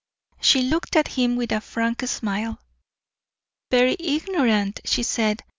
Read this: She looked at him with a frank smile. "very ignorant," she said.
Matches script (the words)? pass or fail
pass